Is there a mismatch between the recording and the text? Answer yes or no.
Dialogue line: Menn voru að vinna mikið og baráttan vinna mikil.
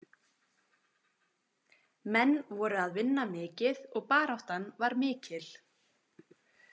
yes